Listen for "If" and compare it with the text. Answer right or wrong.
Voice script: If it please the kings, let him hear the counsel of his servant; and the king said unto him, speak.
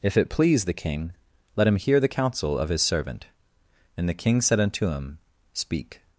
right